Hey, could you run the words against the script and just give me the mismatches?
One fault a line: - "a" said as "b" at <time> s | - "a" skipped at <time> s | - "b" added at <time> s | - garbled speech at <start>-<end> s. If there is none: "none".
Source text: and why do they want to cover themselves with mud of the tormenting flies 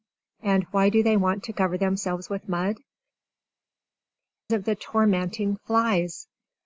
none